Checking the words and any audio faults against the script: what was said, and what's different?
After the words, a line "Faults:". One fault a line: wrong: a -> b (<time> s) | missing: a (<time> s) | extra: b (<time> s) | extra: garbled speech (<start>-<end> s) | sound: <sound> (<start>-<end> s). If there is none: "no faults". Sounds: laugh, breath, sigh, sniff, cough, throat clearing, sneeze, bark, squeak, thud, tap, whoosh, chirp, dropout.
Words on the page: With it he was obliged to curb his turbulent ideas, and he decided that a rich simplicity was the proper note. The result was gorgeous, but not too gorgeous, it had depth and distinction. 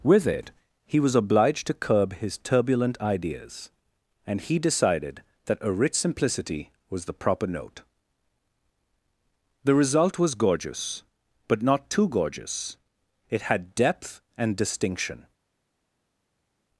With it he was obliged to curb his turbulent ideas, and he decided that a rich simplicity was the proper note. The result was gorgeous, but not too gorgeous, it had depth and distinction.
Faults:
no faults